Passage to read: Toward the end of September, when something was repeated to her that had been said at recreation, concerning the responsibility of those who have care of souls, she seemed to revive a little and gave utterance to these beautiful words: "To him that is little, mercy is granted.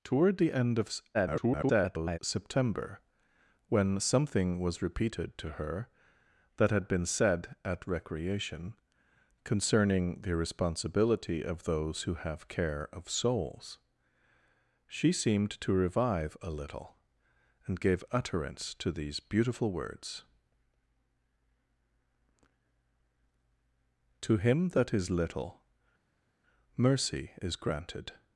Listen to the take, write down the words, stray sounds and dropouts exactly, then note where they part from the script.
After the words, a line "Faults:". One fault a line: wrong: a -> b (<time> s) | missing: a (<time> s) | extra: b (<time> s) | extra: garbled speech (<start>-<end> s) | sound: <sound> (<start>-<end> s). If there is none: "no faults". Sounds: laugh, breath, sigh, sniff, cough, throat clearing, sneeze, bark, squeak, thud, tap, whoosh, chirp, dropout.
Toward the end of [garbled] September, when something was repeated to her that had been said at recreation, concerning the responsibility of those who have care of souls, she seemed to revive a little and gave utterance to these beautiful words: "To him that is little, mercy is granted.
Faults:
extra: garbled speech (1.1-2.2 s)